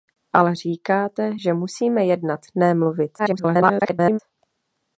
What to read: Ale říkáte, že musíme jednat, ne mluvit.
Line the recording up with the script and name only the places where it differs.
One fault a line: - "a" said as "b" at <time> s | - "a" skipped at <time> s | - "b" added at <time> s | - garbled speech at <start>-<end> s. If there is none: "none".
- garbled speech at 3.2-4.2 s